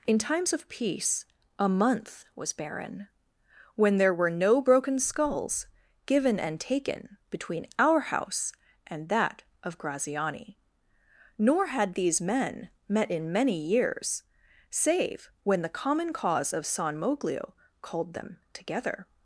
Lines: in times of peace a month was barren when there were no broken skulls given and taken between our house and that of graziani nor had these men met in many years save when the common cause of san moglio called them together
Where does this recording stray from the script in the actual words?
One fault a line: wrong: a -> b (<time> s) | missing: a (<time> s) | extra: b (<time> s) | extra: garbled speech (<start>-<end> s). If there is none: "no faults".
no faults